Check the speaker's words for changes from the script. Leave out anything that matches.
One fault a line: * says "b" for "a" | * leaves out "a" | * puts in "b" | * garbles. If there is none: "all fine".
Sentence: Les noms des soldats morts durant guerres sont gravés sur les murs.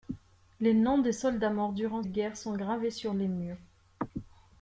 all fine